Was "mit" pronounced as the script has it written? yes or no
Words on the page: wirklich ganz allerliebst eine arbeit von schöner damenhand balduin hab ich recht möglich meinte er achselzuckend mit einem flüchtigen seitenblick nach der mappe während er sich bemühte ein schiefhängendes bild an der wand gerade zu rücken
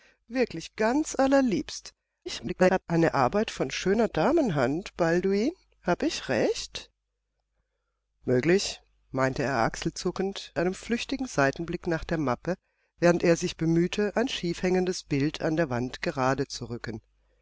no